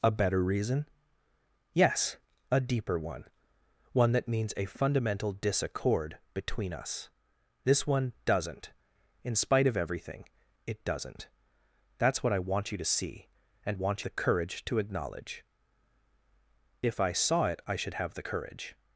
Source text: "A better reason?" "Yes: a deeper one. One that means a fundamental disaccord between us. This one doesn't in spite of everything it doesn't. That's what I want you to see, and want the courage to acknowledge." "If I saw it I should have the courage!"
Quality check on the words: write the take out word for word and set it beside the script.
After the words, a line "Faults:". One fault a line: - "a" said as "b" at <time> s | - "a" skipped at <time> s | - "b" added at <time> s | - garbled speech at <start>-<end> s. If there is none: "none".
"A better reason?" "Yes: a deeper one. One that means a fundamental disaccord between us. This one doesn't in spite of everything it doesn't. That's what I want you to see, and want the courage to acknowledge." "If I saw it I should have the courage!"
Faults:
none